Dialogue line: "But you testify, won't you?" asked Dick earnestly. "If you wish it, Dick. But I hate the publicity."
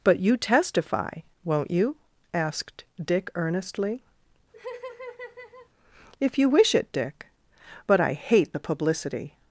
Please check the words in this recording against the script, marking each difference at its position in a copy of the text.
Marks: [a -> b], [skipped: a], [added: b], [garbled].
"But you testify, won't you?" asked Dick earnestly. "If you wish it, Dick. But I hate the publicity."